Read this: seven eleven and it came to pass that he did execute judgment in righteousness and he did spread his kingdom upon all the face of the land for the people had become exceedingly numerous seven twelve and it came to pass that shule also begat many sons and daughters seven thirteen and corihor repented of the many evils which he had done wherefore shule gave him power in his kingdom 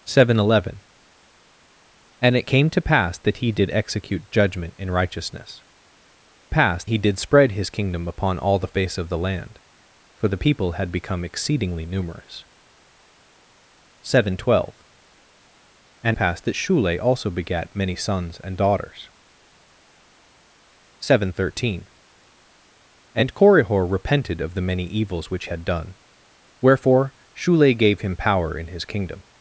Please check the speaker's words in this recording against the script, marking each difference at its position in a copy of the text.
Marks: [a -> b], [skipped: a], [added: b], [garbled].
seven eleven and it came to pass that he did execute judgment in righteousness [and -> pass] he did spread his kingdom upon all the face of the land for the people had become exceedingly numerous seven twelve and [skipped: it came to] pass that shule also begat many sons and daughters seven thirteen and corihor repented of the many evils which [skipped: he] had done wherefore shule gave him power in his kingdom